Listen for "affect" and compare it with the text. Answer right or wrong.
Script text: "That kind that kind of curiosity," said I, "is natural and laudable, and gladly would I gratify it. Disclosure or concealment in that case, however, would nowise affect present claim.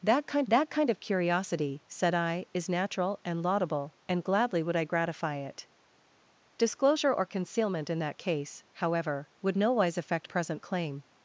right